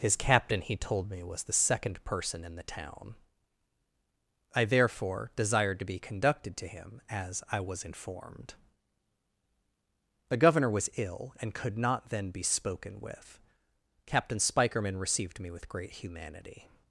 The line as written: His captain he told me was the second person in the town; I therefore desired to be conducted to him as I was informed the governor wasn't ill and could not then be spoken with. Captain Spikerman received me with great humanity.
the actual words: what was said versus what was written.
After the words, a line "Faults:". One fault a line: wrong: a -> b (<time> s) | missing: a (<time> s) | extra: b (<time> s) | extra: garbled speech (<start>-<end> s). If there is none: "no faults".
His captain he told me was the second person in the town; I therefore desired to be conducted to him as I was informed the governor was ill and could not then be spoken with. Captain Spikerman received me with great humanity.
Faults:
wrong: wasn't -> was (10.7 s)